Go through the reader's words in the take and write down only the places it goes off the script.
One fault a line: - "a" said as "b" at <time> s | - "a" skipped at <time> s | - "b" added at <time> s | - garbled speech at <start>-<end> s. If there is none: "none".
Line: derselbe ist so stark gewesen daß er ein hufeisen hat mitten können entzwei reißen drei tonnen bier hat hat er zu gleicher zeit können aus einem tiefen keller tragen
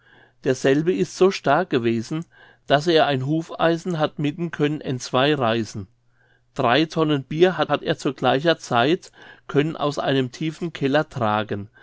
none